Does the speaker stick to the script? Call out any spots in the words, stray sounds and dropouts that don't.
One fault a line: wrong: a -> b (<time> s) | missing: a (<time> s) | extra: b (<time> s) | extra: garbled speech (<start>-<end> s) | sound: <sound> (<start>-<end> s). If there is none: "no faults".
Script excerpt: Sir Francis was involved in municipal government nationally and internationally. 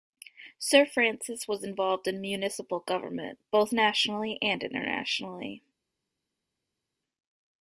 extra: both (3.5 s)